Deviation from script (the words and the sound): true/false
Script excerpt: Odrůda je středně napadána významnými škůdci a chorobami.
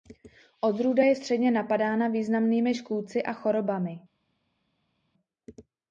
false